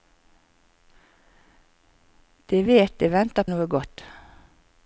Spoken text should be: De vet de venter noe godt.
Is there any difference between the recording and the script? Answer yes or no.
no